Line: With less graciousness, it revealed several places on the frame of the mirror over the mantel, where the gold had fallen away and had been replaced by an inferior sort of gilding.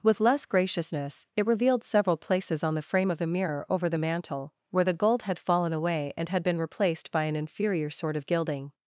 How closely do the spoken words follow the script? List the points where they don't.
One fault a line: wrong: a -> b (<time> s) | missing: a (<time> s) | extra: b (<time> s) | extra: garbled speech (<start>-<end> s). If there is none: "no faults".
no faults